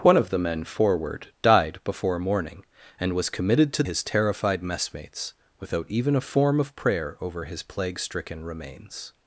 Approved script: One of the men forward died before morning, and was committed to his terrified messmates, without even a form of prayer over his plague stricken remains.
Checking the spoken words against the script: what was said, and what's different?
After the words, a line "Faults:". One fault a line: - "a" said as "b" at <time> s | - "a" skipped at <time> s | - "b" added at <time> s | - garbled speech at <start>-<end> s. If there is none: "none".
One of the men forward died before morning, and was committed to his terrified messmates, without even a form of prayer over his plague stricken remains.
Faults:
none